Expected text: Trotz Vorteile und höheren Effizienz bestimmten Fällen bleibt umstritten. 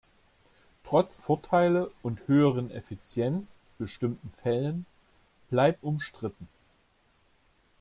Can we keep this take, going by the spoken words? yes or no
yes